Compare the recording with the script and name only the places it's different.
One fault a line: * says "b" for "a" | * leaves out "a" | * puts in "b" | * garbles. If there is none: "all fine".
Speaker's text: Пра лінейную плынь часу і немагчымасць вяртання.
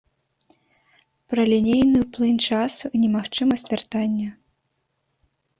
all fine